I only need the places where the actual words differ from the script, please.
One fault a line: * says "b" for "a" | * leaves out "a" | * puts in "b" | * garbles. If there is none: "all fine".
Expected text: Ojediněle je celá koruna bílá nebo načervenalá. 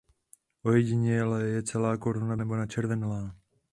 * leaves out "bílá"